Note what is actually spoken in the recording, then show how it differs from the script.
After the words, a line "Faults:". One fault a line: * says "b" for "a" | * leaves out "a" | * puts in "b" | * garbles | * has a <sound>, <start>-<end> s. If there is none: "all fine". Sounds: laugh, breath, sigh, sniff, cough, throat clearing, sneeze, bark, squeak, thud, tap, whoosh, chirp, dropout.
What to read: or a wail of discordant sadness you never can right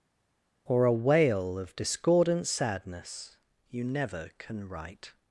or a wail of discordant sadness you never can right
Faults:
all fine